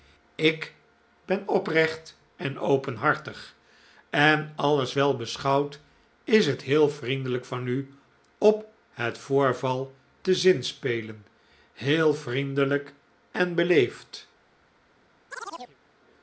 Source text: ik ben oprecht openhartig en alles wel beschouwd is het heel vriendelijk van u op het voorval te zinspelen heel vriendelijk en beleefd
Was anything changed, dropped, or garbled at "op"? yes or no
no